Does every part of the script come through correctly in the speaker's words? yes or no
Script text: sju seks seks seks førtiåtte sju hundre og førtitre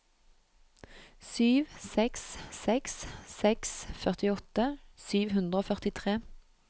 yes